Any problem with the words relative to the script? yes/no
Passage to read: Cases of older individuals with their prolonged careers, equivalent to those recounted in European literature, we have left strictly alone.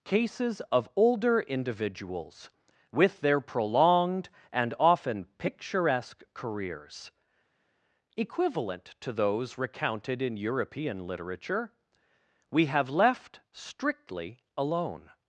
yes